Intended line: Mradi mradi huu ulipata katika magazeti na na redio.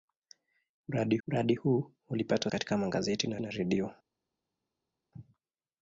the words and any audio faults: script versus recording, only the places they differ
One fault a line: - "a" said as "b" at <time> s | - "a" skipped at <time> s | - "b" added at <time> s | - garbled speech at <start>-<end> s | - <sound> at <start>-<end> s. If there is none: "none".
none